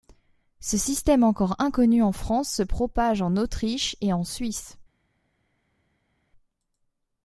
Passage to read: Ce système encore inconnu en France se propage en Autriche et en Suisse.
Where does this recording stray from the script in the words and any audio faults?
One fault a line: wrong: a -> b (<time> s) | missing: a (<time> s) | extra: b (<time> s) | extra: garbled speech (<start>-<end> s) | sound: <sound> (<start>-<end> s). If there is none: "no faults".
no faults